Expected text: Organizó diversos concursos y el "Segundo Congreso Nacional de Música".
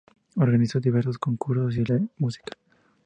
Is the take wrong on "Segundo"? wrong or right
wrong